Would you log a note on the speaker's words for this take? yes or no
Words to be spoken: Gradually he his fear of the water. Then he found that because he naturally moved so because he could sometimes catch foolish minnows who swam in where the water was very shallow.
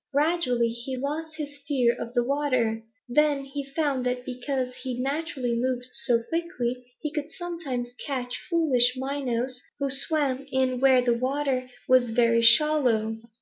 yes